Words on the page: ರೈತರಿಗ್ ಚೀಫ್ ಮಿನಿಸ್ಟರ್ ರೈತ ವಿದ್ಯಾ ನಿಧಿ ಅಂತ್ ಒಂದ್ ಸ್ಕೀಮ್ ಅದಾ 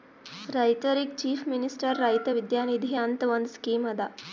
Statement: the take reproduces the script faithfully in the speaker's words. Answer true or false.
true